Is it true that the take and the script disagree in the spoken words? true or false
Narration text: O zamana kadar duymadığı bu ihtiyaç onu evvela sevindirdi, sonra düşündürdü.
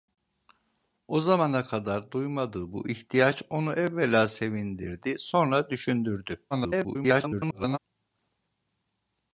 true